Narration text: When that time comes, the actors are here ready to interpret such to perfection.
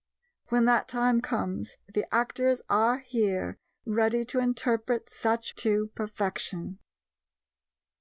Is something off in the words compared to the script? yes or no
no